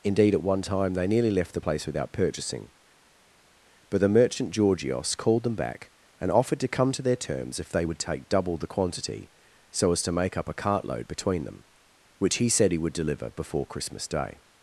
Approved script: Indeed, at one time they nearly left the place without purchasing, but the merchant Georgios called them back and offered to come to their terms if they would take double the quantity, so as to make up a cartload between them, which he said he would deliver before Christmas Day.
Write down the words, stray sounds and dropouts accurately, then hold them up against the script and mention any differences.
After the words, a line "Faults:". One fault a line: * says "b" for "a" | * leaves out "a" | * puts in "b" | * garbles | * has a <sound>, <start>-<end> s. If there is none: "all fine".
Indeed, at one time they nearly left the place without purchasing, but the merchant Georgios called them back and offered to come to their terms if they would take double the quantity, so as to make up a cartload between them, which he said he would deliver before Christmas Day.
Faults:
all fine